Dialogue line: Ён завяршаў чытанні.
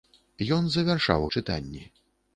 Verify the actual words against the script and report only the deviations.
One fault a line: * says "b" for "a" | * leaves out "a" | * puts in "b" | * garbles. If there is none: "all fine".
all fine